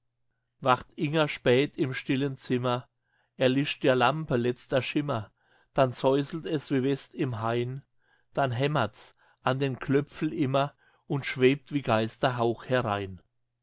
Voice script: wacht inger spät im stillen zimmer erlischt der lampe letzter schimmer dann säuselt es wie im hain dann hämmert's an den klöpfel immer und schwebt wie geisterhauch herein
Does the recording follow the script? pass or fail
fail